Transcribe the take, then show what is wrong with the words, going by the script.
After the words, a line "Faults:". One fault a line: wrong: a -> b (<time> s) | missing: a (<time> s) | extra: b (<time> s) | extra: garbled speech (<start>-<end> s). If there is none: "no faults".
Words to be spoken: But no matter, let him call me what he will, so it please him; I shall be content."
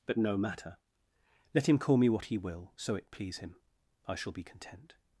But no matter, let him call me what he will, so it please him; I shall be content."
Faults:
no faults